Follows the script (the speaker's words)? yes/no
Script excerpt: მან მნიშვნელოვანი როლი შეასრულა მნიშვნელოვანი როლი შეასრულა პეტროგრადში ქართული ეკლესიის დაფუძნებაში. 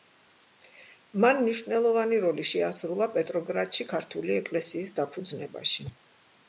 no